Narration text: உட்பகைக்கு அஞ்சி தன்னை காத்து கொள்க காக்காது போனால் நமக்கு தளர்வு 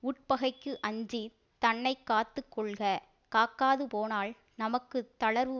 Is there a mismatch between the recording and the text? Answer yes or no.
no